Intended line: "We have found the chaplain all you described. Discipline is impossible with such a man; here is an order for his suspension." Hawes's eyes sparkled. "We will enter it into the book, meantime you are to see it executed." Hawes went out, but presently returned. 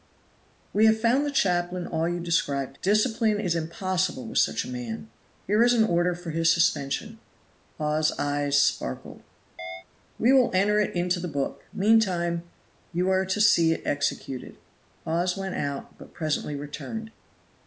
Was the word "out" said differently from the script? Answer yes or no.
no